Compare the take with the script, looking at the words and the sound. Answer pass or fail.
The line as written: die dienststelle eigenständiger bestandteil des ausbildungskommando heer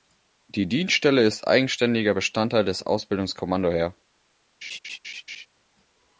fail